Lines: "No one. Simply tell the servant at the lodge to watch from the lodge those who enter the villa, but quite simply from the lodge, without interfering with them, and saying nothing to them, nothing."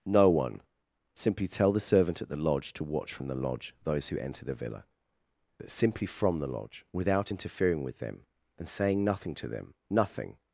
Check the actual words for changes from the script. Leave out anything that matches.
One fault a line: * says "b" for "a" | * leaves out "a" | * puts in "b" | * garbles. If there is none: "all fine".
* leaves out "quite"